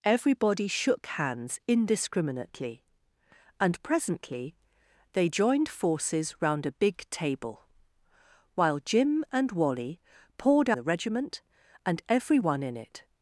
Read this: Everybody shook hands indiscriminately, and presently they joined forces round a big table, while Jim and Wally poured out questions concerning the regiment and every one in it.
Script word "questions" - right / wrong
wrong